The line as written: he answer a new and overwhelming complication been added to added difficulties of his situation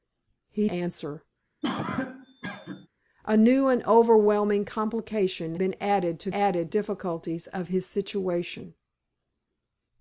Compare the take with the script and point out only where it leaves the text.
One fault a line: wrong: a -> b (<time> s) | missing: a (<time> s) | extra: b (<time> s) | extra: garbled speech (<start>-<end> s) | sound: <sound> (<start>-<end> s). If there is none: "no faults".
sound: cough (1.6-2.9 s)